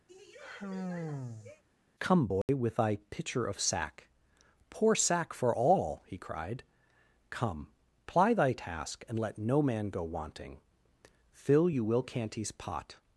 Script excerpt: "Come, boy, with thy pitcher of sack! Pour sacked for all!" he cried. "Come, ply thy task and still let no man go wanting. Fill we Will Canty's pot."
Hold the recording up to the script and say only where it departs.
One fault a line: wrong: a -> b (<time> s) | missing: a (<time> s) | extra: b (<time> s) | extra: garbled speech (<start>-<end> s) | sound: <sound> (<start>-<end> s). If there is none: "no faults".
sound: sigh (0.1-1.6 s)
sound: dropout (2.4-2.5 s)
wrong: sacked -> sack (4.9 s)
missing: still (9.2 s)
wrong: we -> you (11.7 s)